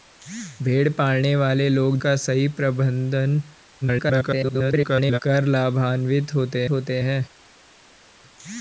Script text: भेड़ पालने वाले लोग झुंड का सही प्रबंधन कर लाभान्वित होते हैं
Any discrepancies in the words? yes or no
yes